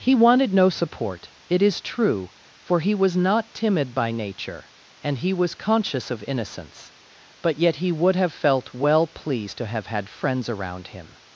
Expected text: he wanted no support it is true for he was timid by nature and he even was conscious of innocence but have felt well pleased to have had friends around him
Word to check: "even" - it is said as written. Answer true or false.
false